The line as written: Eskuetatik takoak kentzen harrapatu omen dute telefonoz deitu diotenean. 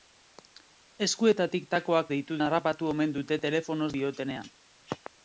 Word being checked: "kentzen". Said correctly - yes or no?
no